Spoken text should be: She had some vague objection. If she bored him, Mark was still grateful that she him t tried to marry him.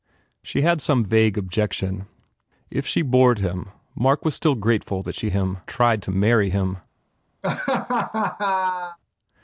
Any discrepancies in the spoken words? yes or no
no